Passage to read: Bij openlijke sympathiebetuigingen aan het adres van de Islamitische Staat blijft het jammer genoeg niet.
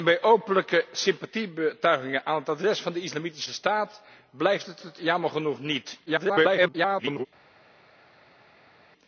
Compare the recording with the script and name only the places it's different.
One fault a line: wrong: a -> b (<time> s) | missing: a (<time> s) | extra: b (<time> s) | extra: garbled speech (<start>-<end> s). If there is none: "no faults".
extra: het (4.8 s)
extra: garbled speech (6.1-7.3 s)